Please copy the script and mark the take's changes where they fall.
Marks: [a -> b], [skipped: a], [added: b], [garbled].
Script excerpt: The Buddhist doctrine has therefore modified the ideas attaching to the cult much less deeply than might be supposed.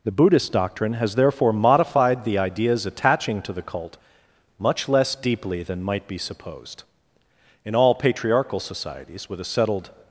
The Buddhist doctrine has therefore modified the ideas attaching to the cult much less deeply than might be supposed. [added: In all patriarchal societies with a settled]